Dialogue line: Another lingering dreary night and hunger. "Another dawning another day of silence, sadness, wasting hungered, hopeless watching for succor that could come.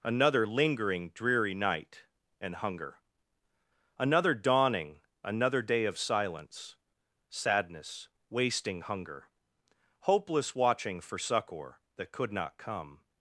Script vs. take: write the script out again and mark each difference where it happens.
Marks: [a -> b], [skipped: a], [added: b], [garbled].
Another lingering dreary night and hunger. "Another dawning another day of silence, sadness, wasting [hungered, -> hunger] hopeless watching for succor that could [added: not] come.